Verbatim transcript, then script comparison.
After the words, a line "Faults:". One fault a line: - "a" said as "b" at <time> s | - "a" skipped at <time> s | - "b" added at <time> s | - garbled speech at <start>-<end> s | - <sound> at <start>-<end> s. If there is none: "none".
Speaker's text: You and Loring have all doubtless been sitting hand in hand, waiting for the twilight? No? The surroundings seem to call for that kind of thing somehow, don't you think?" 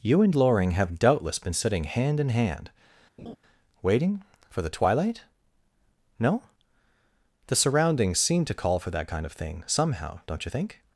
You and Loring have doubtless been sitting hand in hand, waiting for the twilight? No? The surroundings seem to call for that kind of thing somehow, don't you think?"
Faults:
- "all" skipped at 1.0 s
- laugh at 3.2-3.4 s